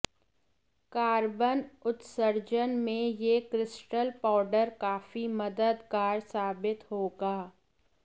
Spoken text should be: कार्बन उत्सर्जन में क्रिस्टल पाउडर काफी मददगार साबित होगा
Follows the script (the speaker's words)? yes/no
no